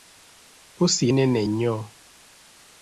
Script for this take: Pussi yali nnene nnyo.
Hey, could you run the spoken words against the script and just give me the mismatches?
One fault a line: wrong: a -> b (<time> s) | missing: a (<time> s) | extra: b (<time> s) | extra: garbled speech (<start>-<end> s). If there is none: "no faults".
missing: yali (1.1 s)